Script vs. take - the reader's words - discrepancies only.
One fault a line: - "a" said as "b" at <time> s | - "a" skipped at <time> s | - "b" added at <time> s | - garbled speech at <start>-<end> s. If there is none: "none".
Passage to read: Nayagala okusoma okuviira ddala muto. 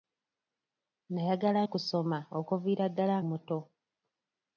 none